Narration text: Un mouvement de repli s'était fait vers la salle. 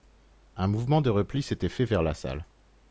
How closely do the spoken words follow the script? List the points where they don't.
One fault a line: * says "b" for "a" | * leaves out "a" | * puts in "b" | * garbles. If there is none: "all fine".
all fine